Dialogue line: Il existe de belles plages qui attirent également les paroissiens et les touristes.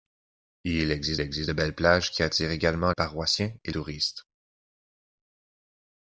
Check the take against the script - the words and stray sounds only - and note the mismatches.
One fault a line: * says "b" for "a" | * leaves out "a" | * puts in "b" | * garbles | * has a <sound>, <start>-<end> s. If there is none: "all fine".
* puts in "existe"
* leaves out "les"
* leaves out "les"